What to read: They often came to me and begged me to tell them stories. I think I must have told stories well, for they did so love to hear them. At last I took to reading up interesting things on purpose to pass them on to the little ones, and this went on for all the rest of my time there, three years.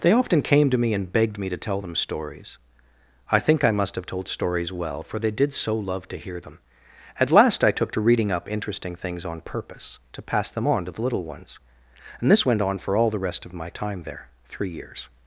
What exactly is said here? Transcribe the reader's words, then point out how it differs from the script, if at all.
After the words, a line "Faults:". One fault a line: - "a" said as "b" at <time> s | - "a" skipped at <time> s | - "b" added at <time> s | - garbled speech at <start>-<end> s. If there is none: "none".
They often came to me and begged me to tell them stories. I think I must have told stories well, for they did so love to hear them. At last I took to reading up interesting things on purpose to pass them on to the little ones, and this went on for all the rest of my time there, three years.
Faults:
none